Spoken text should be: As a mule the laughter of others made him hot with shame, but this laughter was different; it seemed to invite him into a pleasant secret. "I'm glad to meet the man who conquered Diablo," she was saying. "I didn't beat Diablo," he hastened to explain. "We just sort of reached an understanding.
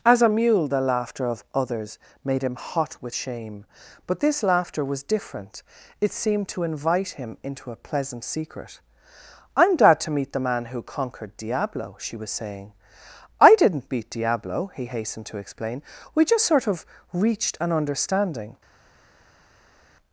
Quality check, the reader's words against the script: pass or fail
pass